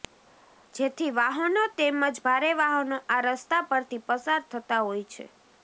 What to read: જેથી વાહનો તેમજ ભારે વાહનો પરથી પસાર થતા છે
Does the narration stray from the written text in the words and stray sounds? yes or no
yes